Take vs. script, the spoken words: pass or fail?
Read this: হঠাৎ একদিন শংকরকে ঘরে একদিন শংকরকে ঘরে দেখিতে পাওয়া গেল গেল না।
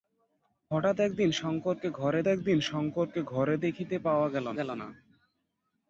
pass